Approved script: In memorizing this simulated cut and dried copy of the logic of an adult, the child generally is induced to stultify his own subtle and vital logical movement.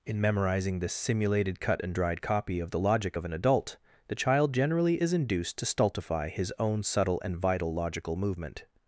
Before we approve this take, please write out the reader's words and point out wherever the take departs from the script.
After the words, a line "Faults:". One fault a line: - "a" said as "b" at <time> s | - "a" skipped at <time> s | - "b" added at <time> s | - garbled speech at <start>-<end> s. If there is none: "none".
In memorizing this simulated cut and dried copy of the logic of an adult, the child generally is induced to stultify his own subtle and vital logical movement.
Faults:
none